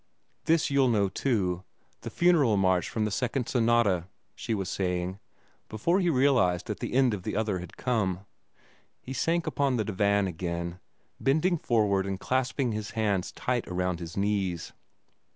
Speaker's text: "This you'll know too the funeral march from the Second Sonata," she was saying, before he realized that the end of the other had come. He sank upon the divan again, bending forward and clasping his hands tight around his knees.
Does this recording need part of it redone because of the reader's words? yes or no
no